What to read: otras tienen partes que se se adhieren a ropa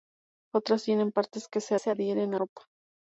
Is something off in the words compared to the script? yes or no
no